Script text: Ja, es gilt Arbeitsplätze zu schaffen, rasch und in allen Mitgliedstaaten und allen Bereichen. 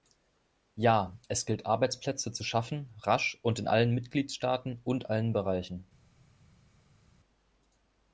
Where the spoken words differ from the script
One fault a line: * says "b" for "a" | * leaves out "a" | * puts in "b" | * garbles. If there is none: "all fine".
all fine